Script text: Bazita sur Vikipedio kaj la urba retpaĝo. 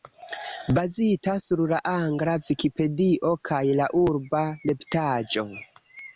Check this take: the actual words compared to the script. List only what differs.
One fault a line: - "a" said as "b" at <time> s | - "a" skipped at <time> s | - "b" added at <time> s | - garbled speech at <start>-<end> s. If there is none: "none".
- "la angla" added at 1.7 s